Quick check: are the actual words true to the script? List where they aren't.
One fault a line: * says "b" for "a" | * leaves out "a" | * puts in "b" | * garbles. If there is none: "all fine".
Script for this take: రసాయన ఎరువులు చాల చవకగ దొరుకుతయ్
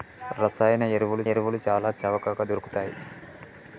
* puts in "ఎరువులు"